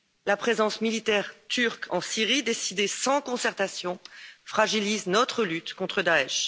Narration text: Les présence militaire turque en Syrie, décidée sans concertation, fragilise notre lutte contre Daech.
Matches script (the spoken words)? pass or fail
fail